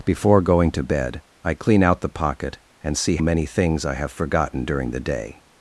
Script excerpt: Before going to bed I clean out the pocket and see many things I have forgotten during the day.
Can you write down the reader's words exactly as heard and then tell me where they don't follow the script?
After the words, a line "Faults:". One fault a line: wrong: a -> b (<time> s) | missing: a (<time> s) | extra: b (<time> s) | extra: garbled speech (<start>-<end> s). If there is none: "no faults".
Before going to bed I clean out the pocket and see many things I have forgotten during the day.
Faults:
no faults